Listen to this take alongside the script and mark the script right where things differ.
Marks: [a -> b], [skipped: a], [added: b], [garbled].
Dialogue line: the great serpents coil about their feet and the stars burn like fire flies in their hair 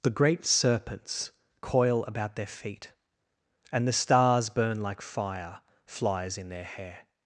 the great serpents coil about their feet and the stars burn like fire flies in their hair